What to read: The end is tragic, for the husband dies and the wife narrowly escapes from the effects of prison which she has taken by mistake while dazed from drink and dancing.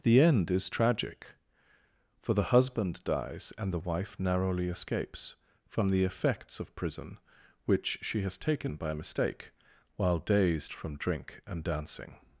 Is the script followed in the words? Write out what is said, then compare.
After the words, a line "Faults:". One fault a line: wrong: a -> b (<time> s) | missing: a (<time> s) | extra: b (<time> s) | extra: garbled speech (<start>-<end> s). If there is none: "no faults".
The end is tragic, for the husband dies and the wife narrowly escapes from the effects of prison which she has taken by mistake while dazed from drink and dancing.
Faults:
no faults